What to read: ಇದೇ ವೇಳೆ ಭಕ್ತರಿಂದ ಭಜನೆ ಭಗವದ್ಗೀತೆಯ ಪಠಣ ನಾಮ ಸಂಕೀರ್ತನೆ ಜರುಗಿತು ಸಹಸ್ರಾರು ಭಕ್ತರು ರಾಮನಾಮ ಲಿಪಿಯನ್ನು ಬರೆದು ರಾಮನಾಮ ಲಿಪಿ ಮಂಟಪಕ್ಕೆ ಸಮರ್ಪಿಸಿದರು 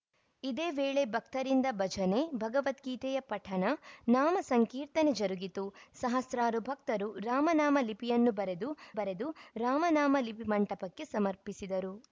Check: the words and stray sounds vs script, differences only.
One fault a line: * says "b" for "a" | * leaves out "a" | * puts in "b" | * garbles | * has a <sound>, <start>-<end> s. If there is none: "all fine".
* puts in "ಬರೆದು"